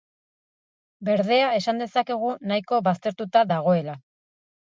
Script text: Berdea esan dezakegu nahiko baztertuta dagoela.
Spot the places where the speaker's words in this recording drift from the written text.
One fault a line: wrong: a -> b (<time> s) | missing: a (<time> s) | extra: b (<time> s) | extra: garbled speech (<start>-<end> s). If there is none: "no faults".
no faults